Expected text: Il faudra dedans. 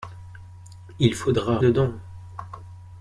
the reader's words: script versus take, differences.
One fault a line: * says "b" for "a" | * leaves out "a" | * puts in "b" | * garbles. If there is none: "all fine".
all fine